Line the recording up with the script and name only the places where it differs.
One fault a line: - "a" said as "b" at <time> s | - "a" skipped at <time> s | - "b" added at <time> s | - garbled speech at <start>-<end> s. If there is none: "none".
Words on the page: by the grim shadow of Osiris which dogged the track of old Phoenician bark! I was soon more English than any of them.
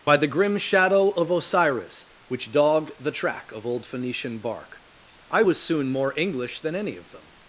none